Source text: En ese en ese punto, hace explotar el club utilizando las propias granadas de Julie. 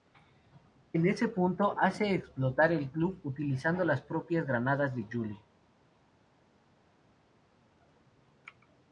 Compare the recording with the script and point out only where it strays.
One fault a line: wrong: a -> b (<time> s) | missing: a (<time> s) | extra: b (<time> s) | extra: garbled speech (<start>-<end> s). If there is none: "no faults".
missing: en ese (1.3 s)